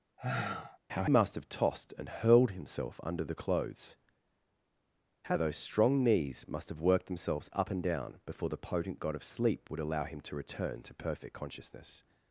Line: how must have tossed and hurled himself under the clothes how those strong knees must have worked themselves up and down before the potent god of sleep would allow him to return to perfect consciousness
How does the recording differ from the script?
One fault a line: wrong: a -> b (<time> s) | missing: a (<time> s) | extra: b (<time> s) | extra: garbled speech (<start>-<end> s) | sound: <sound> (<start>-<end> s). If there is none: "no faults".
sound: sigh (0.2-0.8 s)